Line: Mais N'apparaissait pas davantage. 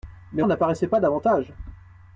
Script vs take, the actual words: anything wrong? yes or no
no